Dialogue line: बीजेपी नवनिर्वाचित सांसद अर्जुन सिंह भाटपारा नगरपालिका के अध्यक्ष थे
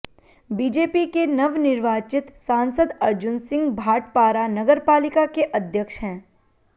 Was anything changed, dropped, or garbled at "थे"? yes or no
yes